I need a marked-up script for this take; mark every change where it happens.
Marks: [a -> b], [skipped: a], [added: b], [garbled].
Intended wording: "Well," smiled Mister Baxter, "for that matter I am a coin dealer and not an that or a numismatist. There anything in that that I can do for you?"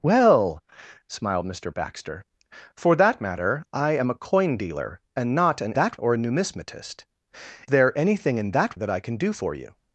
"Well," smiled Mister Baxter, "for that matter I am a coin dealer and not an that or a numismatist. There anything in that that I can do for you?"